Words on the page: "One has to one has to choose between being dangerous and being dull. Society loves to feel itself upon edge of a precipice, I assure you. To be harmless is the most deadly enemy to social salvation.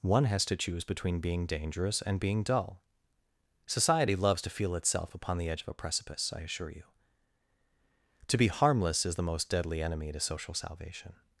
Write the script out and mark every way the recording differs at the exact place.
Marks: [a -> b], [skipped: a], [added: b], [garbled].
"One has to [skipped: one has to] choose between being dangerous and being dull. Society loves to feel itself upon [added: the] edge of a precipice, I assure you. To be harmless is the most deadly enemy to social salvation.